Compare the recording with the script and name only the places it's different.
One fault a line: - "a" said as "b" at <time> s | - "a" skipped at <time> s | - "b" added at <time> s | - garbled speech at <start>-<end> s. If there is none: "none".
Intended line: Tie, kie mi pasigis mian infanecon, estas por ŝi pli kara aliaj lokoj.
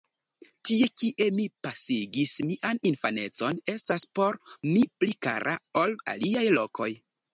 - "ŝi" said as "mi" at 4.7 s
- "ol" added at 5.8 s